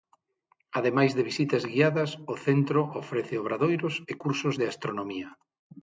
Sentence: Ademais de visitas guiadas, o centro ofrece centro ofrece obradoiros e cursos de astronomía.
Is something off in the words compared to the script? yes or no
yes